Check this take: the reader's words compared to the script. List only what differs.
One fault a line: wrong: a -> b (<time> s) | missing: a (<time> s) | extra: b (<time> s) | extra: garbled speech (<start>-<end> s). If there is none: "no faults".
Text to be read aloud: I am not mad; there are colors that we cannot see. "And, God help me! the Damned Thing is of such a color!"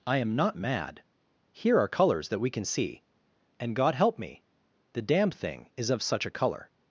wrong: there -> here (1.5 s)
wrong: cannot -> can (2.5 s)